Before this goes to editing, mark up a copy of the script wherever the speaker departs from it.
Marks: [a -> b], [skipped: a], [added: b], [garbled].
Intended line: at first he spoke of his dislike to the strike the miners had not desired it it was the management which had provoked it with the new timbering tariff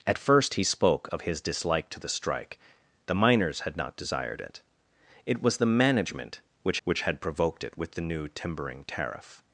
at first he spoke of his dislike to the strike the miners had not desired it it was the management which [added: which] had provoked it with the new timbering tariff